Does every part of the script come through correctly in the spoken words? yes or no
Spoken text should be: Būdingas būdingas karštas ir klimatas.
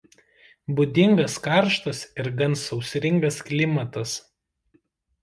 no